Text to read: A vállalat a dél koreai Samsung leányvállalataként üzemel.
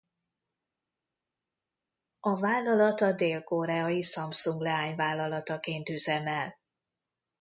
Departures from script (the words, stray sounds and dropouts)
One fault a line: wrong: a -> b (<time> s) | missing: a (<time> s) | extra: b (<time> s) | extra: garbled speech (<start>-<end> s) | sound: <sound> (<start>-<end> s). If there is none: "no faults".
no faults